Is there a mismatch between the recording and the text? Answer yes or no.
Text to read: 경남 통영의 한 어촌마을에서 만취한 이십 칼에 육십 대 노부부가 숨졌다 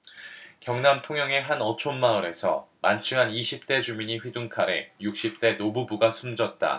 yes